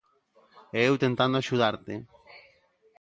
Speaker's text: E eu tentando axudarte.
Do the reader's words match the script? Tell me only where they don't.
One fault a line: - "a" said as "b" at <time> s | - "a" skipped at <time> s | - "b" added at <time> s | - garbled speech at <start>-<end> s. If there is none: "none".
none